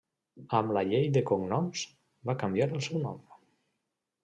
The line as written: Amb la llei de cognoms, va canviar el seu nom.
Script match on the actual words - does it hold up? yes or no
yes